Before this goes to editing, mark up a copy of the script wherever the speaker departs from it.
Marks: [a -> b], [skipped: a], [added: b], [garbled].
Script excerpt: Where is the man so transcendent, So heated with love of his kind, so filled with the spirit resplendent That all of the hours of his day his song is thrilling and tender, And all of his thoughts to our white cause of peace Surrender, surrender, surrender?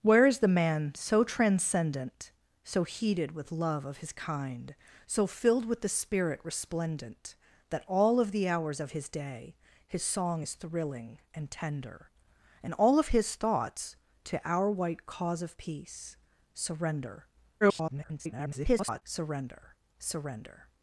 Where is the man so transcendent, So heated with love of his kind, so filled with the spirit resplendent That all of the hours of his day his song is thrilling and tender, And all of his thoughts to our white cause of peace Surrender, [garbled] surrender, surrender?